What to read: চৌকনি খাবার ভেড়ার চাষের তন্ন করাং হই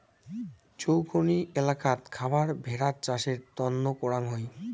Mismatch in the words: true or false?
true